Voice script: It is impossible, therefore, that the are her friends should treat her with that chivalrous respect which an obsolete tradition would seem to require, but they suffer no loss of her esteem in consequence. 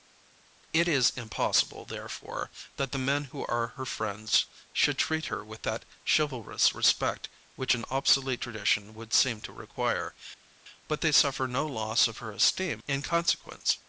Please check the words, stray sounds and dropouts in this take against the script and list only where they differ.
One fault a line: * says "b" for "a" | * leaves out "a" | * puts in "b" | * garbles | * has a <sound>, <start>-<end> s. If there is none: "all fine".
* puts in "men who"